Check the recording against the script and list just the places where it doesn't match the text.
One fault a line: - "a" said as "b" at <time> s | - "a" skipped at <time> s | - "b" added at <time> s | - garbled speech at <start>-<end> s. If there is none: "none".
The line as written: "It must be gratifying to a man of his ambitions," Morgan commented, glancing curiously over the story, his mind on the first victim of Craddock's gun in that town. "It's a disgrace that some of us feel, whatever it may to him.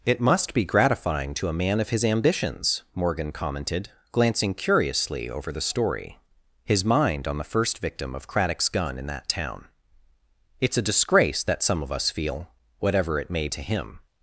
none